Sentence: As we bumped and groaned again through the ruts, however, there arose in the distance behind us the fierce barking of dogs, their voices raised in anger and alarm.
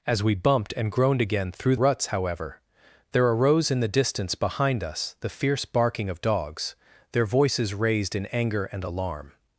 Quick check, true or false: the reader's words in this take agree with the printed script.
false